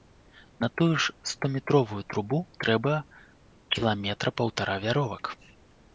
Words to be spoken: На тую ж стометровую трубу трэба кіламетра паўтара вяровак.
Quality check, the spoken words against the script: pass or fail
pass